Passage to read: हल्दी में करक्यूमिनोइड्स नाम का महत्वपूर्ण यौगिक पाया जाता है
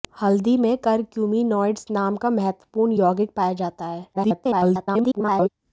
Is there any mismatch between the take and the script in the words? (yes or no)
yes